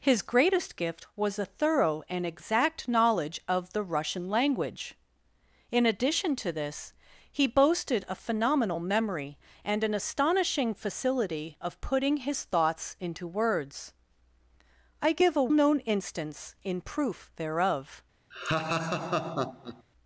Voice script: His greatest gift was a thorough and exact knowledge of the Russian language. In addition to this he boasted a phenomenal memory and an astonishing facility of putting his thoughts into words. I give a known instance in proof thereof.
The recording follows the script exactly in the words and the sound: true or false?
false